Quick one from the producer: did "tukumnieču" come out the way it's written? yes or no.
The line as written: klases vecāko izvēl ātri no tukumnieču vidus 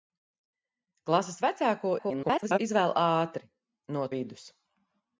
no